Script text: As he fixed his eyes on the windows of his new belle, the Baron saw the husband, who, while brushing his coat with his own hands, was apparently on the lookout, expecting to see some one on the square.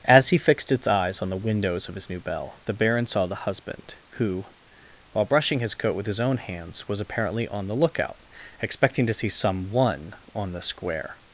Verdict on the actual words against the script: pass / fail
fail